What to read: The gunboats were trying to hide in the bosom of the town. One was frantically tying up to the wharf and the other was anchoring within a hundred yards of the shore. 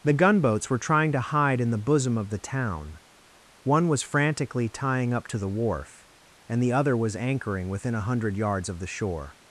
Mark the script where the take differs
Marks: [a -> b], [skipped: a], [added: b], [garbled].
The gunboats were trying to hide in the bosom of the town. One was frantically tying up to the wharf and the other was anchoring within a hundred yards of the shore.